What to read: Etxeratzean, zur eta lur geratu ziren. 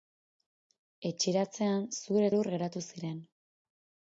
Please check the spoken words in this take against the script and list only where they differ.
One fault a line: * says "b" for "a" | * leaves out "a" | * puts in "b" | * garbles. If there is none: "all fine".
* leaves out "eta"